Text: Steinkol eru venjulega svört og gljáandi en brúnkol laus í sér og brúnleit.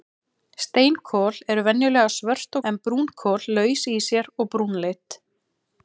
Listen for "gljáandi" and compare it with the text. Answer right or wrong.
wrong